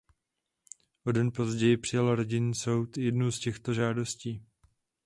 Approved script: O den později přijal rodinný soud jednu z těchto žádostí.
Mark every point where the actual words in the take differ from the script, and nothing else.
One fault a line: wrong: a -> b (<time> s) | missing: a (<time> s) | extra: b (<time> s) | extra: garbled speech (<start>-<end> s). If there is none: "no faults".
no faults